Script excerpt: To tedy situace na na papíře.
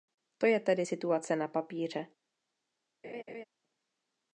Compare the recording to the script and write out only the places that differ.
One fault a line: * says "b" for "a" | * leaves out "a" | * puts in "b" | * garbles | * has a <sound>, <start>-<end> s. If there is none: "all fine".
* puts in "je"
* leaves out "na"
* has a laugh, 3.0-3.4 s